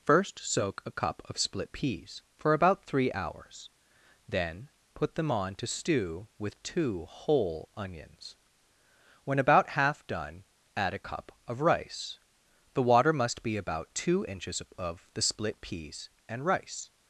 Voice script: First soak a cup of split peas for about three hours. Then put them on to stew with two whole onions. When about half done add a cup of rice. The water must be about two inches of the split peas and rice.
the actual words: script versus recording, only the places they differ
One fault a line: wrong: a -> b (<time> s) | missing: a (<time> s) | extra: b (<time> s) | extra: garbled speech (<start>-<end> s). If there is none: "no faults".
no faults